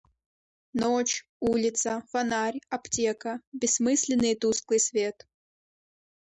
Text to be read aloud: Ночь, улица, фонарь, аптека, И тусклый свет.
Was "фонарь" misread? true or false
false